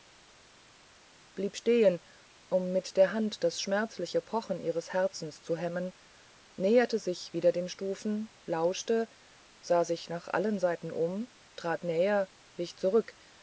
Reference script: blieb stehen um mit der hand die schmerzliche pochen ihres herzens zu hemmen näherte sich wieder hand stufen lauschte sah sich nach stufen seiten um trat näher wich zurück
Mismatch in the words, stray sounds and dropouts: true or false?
true